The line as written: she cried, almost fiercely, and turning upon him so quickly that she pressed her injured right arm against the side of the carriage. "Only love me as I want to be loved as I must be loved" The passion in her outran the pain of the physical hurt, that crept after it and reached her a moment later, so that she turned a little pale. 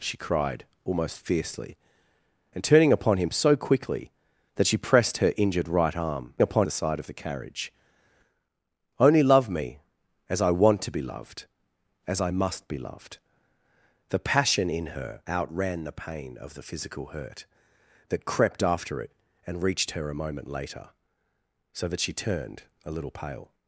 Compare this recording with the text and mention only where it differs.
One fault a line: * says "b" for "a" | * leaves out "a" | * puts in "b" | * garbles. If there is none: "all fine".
* says "upon" for "against"